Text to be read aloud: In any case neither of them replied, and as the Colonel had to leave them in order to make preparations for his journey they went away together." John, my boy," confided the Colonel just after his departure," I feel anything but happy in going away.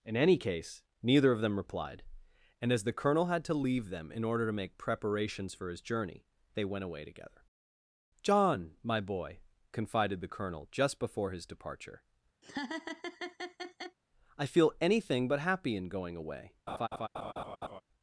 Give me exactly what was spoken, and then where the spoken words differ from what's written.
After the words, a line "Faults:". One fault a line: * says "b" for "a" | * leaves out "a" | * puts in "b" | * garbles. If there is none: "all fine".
In any case neither of them replied, and as the Colonel had to leave them in order to make preparations for his journey they went away together." John, my boy," confided the Colonel just before his departure," I feel anything but happy in going away.
Faults:
* says "before" for "after"